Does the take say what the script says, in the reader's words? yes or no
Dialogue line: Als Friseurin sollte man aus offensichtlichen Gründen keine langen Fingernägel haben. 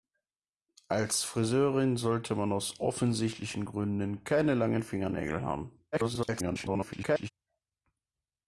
no